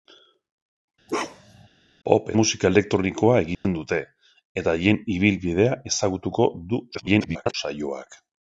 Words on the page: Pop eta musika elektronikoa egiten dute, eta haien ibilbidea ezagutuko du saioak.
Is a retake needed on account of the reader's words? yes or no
yes